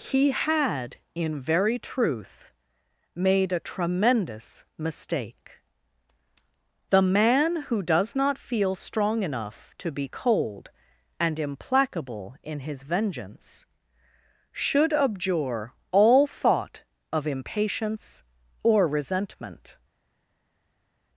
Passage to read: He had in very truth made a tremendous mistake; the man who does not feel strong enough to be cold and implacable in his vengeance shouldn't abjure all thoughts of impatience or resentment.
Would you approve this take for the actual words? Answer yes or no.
no